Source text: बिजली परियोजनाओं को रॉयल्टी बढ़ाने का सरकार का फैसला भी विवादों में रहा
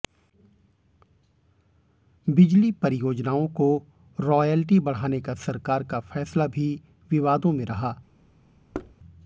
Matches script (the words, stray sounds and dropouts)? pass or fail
fail